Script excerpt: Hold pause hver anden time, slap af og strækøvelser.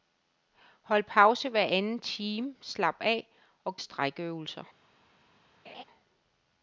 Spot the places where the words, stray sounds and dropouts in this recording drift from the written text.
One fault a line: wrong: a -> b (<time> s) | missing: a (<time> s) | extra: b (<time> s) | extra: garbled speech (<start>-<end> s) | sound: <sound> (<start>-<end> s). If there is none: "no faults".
sound: laugh (5.6-5.8 s)